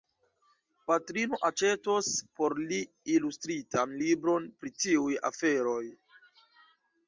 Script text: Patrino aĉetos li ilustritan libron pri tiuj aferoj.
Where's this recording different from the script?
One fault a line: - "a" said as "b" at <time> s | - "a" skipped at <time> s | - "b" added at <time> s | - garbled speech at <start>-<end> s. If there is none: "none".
- "por" added at 2.4 s